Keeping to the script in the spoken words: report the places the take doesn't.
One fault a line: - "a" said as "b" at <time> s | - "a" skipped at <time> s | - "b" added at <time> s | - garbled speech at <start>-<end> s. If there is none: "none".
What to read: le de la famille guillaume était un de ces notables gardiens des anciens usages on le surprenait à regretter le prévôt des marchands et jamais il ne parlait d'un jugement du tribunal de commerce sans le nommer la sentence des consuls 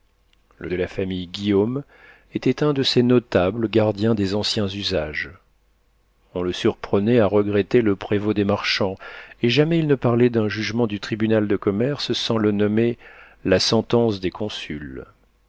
none